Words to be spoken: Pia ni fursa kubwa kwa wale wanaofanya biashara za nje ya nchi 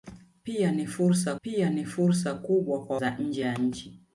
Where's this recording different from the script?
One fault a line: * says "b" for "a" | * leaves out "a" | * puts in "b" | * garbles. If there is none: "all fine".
* says "pia ni fursa kubwa kwa" for "kubwa kwa wale wanaofanya biashara"